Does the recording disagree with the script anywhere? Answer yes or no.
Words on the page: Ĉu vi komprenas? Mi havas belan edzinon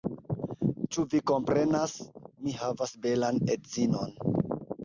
no